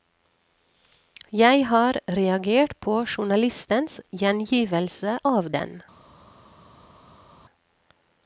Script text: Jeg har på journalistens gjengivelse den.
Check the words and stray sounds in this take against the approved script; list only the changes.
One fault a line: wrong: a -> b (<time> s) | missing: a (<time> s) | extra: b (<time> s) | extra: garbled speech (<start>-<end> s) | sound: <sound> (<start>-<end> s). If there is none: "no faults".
extra: reagert (2.1 s)
extra: av (5.3 s)